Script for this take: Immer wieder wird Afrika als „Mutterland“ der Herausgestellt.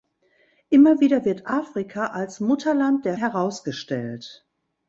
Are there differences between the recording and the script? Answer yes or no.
no